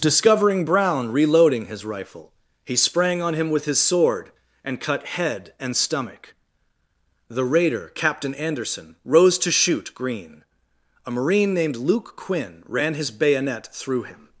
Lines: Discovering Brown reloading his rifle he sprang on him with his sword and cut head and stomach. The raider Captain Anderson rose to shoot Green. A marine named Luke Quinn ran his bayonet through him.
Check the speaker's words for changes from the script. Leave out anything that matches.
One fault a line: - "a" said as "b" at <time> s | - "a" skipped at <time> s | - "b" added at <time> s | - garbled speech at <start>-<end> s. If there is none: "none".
none